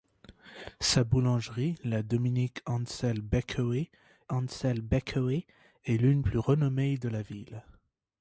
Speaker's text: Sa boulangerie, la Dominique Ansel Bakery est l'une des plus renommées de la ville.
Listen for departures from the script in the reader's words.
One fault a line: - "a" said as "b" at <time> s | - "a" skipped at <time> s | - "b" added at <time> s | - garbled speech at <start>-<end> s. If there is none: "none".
- "Ansel Bakery" added at 4.3 s
- "des" skipped at 6.2 s